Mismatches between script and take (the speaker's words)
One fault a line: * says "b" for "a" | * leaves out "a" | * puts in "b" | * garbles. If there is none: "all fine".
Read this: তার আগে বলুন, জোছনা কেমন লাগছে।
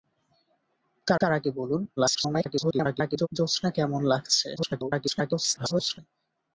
* puts in "তার"
* garbles
* garbles